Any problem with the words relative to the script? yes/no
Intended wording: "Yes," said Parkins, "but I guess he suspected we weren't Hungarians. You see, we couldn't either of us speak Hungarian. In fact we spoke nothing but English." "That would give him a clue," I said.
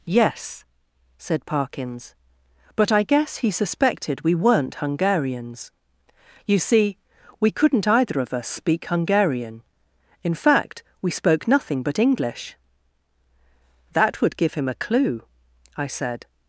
no